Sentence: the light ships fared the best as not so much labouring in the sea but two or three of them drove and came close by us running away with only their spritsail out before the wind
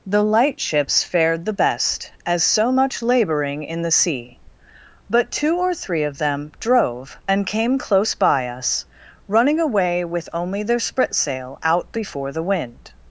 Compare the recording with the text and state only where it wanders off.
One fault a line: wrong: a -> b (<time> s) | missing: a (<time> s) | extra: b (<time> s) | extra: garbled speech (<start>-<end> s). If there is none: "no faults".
missing: not (2.4 s)